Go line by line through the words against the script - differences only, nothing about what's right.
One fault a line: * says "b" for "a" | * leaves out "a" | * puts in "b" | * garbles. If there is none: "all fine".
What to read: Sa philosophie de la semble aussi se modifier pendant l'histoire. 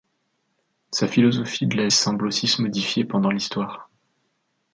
all fine